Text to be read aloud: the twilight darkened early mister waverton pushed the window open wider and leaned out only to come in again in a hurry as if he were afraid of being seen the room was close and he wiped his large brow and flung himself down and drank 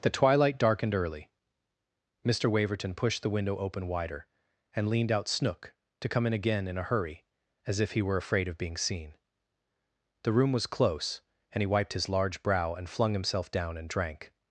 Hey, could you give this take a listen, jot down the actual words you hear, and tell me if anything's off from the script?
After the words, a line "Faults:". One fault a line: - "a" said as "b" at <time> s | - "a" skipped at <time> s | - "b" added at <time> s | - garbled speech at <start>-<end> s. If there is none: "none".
the twilight darkened early mister waverton pushed the window open wider and leaned out snook to come in again in a hurry as if he were afraid of being seen the room was close and he wiped his large brow and flung himself down and drank
Faults:
- "only" said as "snook" at 5.3 s